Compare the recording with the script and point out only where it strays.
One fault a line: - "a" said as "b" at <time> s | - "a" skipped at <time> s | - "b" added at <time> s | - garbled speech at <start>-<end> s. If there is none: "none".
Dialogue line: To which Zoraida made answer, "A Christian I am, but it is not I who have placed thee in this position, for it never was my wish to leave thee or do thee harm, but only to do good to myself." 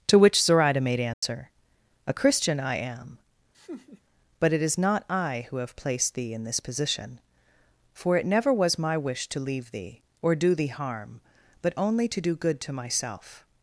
none